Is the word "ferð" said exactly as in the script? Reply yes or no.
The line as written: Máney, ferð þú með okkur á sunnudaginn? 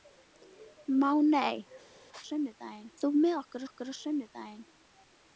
no